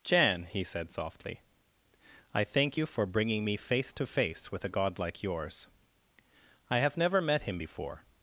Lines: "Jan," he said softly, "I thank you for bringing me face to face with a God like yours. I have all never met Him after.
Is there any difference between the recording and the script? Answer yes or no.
yes